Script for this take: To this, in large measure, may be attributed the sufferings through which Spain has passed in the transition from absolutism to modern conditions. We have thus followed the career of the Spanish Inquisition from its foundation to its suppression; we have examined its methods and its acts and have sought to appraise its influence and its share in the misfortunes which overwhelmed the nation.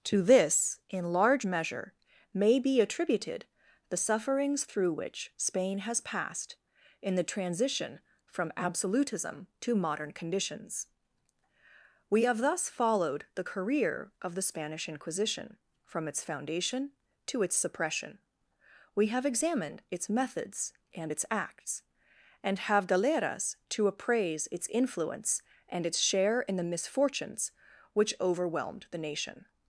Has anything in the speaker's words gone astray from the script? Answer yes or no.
yes